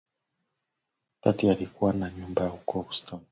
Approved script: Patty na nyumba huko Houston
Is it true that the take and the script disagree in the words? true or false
true